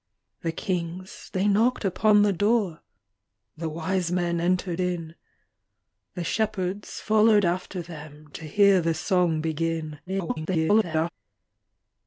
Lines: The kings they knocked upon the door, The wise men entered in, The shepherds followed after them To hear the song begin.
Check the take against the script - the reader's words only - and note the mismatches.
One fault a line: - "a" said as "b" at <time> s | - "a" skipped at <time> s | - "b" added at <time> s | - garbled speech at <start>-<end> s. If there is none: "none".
- garbled speech at 10.1-11.1 s